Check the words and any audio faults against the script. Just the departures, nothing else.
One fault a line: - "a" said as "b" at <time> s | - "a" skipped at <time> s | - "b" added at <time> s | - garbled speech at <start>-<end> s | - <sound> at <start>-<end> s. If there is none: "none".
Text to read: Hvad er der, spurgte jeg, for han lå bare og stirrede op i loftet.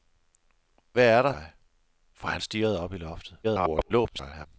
- "spurgte" skipped at 1.3 s
- "lå bare" skipped at 2.4 s
- garbled speech at 3.4-4.5 s